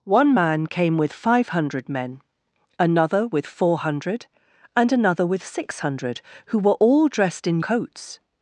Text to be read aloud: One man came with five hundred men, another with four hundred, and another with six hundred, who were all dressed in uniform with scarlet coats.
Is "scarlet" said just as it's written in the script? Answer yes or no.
no